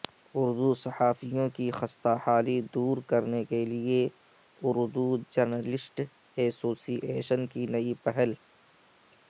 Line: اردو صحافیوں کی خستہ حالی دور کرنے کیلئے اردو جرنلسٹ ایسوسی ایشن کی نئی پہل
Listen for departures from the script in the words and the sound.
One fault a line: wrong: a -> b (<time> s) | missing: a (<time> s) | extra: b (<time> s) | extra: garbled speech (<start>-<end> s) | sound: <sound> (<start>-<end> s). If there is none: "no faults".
no faults